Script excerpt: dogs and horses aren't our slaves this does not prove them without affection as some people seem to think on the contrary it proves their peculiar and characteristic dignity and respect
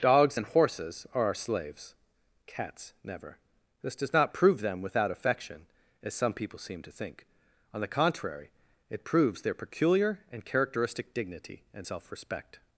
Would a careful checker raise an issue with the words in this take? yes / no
yes